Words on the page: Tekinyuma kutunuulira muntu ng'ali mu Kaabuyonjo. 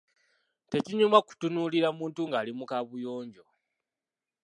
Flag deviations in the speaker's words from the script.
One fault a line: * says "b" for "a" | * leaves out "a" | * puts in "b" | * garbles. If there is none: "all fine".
all fine